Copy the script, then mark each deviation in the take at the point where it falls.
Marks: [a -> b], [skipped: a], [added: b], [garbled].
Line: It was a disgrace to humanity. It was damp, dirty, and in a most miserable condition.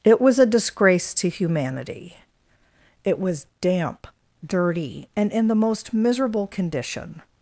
It was a disgrace to humanity. It was damp, dirty, and in [a -> the] most miserable condition.